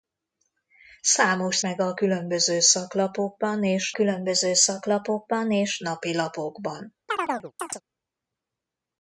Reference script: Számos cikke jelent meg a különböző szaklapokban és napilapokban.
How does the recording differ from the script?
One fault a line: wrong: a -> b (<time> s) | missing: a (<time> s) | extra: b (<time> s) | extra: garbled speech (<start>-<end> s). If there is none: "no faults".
wrong: cikke jelent meg a -> meg a különböző szaklapokban és (1.6 s)